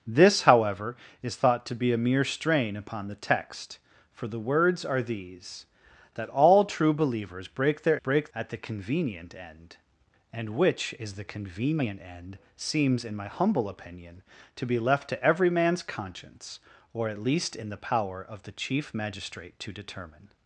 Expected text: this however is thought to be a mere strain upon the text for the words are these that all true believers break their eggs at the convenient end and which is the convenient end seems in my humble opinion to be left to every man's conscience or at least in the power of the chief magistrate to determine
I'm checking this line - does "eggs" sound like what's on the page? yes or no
no